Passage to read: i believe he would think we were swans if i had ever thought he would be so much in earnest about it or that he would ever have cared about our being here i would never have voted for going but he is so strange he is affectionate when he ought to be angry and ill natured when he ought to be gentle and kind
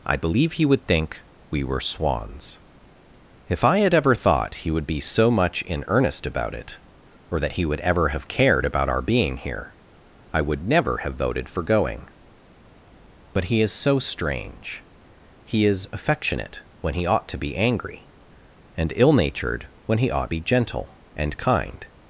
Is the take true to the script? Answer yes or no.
no